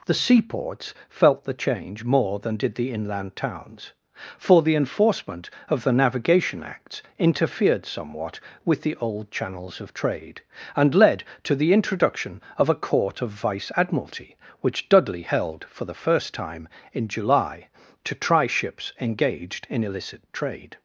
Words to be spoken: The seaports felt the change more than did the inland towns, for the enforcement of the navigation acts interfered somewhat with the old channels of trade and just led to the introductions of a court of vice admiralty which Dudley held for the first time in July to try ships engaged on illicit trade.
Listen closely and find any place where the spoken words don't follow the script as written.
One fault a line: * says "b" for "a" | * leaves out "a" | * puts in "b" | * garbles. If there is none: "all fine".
* leaves out "just"
* says "introduction" for "introductions"
* says "in" for "on"